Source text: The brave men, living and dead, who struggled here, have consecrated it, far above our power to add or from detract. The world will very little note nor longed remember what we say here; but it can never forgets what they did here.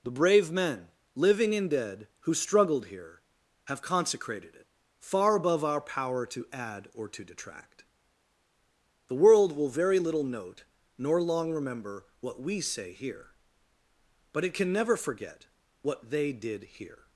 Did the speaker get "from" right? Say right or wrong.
wrong